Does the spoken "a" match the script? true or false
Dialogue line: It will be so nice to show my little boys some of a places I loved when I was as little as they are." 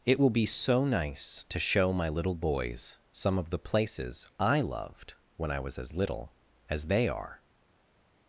false